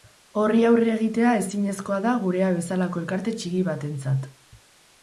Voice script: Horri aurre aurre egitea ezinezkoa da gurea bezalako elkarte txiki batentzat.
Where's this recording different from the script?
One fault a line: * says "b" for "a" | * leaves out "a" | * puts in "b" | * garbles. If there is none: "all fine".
* leaves out "aurre"